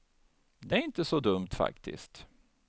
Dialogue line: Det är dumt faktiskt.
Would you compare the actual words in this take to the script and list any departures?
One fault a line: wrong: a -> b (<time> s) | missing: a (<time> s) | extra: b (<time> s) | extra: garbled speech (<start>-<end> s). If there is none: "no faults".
extra: inte så (0.8 s)